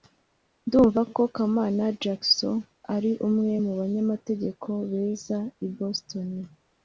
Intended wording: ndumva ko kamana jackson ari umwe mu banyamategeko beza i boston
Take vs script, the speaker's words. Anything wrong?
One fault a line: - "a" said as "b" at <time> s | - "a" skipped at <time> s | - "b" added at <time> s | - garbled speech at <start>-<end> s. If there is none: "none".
none